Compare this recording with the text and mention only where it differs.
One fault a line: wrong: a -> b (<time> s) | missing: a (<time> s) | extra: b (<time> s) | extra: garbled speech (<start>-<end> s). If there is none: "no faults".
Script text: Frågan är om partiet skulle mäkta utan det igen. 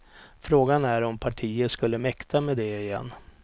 wrong: utan -> med (2.4 s)